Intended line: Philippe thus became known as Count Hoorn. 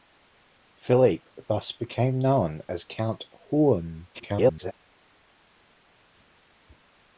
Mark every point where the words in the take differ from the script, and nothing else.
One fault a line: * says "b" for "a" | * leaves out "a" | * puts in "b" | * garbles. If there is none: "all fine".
* garbles